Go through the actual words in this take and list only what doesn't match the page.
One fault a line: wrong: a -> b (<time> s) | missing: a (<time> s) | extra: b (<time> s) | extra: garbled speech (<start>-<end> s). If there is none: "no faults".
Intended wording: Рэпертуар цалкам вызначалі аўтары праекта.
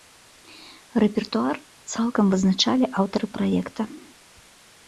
no faults